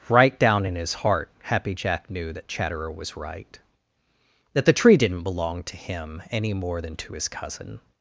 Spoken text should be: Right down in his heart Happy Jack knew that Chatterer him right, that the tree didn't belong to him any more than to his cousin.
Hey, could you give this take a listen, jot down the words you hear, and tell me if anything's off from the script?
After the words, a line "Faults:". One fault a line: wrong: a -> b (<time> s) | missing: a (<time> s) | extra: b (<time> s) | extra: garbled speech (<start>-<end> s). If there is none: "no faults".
Right down in his heart Happy Jack knew that Chatterer was right, that the tree didn't belong to him any more than to his cousin.
Faults:
wrong: him -> was (2.9 s)